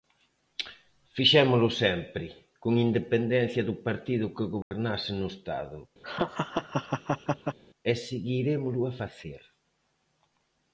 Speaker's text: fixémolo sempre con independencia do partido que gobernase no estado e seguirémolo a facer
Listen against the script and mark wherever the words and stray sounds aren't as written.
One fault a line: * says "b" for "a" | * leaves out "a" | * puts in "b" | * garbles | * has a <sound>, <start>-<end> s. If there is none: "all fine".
* has a dropout, 4.6-4.7 s
* has a laugh, 6.0-7.6 s